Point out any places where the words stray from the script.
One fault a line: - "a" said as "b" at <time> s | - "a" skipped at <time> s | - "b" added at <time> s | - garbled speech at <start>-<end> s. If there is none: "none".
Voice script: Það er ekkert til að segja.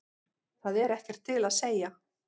none